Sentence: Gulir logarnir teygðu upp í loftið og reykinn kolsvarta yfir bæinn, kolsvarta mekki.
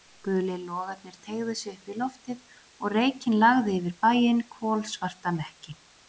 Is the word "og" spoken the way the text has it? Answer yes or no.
yes